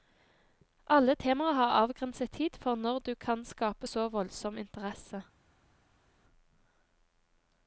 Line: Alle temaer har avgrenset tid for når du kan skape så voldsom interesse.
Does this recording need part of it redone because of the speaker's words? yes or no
no